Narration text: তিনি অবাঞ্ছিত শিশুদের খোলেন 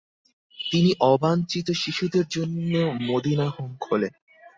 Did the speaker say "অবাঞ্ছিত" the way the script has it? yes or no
yes